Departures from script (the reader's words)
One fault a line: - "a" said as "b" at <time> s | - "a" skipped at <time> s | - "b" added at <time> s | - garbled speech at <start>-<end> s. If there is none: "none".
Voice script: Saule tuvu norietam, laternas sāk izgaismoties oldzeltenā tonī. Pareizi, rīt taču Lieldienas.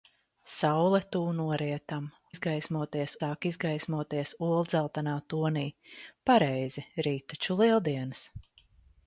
- "laternas" said as "izgaismoties" at 2.3 s